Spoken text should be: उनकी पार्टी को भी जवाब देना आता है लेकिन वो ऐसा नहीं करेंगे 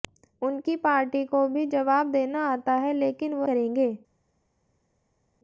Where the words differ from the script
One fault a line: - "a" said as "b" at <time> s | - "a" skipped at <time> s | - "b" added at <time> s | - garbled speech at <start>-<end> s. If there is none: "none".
- "ऐसा नहीं" skipped at 3.5 s